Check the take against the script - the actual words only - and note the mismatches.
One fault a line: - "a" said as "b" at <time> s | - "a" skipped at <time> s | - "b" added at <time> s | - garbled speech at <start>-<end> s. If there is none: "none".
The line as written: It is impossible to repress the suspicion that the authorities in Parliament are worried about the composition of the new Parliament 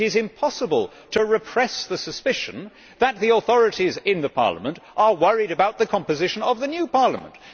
none